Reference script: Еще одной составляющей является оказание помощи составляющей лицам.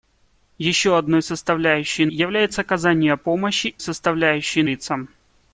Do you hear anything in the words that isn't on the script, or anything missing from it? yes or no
no